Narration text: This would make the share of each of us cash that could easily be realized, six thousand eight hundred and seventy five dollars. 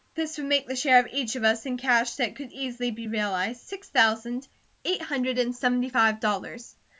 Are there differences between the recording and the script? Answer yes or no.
yes